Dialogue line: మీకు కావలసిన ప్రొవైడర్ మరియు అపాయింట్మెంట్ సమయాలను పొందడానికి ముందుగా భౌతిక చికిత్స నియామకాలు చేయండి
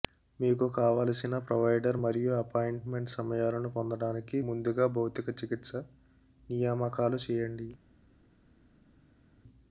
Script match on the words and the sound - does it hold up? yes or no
yes